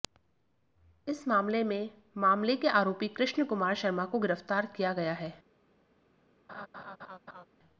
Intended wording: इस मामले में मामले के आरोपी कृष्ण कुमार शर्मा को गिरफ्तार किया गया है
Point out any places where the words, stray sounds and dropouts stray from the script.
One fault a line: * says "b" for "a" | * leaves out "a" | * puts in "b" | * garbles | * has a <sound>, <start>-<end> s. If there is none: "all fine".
* has a laugh, 6.5-7.5 s